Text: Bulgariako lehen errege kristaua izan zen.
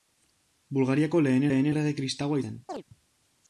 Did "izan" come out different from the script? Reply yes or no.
yes